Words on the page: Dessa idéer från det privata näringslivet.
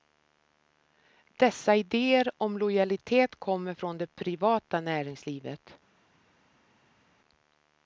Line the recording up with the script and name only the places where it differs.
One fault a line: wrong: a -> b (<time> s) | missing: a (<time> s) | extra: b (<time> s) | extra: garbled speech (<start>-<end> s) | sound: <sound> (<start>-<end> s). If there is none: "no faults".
extra: om lojalitet kommer (2.4 s)